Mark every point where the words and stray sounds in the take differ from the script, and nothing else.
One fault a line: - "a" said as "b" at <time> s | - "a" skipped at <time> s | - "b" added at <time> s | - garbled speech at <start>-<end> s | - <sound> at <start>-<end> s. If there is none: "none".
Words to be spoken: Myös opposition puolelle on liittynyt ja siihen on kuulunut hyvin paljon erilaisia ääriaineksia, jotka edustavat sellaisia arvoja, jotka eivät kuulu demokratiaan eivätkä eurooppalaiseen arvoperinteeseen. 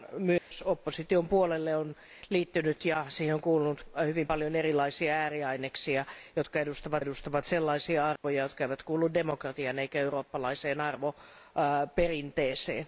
- dropout at 0.4-0.5 s
- "edustavat" added at 7.0 s
- dropout at 8.2-8.2 s